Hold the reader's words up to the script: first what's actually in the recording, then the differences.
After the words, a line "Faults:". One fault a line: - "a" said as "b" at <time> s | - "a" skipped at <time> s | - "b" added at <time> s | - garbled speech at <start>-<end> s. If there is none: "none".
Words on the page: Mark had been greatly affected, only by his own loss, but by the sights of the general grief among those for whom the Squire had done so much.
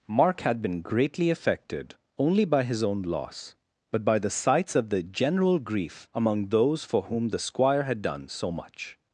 Mark had been greatly affected, only by his own loss, but by the sights of the general grief among those for whom the Squire had done so much.
Faults:
none